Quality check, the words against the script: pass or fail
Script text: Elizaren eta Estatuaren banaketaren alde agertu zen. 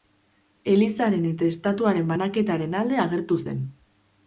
pass